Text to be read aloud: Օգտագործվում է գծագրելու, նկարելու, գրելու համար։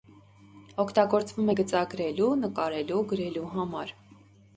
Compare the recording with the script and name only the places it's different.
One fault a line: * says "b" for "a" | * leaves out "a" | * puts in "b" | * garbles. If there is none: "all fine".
all fine